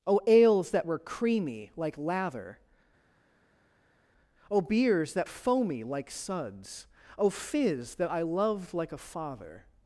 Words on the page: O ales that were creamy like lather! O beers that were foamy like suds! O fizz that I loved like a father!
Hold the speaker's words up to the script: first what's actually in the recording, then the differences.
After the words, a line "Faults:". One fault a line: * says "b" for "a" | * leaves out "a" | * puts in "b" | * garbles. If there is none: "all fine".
O ales that were creamy like lather! O beers that foamy like suds! O fizz that I loved like a father!
Faults:
* leaves out "were"